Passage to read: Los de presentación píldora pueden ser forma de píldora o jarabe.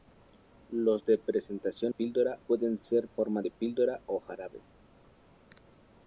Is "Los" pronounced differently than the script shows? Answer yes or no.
no